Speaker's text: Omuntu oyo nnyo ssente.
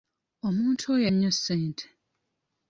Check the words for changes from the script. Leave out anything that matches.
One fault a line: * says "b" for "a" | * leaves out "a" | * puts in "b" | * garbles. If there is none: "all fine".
all fine